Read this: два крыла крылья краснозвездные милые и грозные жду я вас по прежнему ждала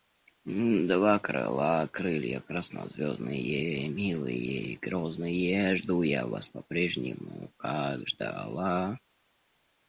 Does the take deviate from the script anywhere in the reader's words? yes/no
yes